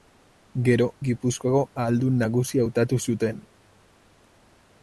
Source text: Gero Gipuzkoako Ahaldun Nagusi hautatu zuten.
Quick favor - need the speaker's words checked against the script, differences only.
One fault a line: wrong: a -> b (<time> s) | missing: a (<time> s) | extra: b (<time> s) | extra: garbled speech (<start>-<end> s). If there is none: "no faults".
no faults